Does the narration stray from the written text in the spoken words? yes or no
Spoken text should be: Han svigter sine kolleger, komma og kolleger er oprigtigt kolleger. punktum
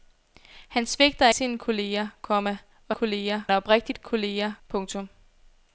no